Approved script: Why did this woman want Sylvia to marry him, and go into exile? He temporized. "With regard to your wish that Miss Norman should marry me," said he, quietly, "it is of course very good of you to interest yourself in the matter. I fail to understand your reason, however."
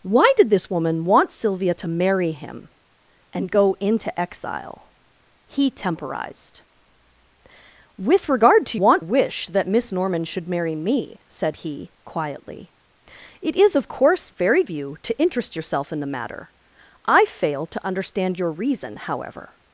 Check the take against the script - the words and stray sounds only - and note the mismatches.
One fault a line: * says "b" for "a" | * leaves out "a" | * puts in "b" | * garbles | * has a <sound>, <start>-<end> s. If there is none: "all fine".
* says "want" for "your"
* leaves out "good of"